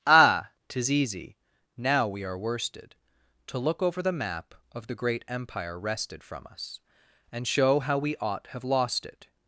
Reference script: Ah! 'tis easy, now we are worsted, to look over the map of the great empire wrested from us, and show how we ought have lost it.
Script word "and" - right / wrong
right